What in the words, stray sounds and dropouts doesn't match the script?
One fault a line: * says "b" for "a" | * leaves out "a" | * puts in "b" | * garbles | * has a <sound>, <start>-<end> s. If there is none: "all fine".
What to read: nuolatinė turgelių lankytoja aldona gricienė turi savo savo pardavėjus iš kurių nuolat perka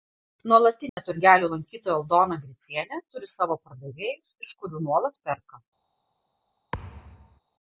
* has a dropout, 0.9-1.0 s
* leaves out "savo"
* has a thud, 6.7-7.4 s